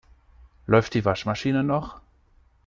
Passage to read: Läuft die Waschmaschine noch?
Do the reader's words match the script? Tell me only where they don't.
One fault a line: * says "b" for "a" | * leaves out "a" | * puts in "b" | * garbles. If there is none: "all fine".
all fine